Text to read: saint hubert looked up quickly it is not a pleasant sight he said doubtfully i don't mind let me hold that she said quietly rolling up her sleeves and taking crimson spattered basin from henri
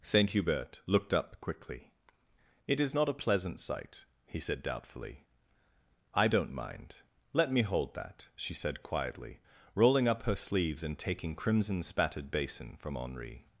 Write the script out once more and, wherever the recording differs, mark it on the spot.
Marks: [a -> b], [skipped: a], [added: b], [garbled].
saint hubert looked up quickly it is not a pleasant sight he said doubtfully i don't mind let me hold that she said quietly rolling up her sleeves and taking crimson spattered basin from henri